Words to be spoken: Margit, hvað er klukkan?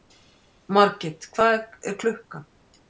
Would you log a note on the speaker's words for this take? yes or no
no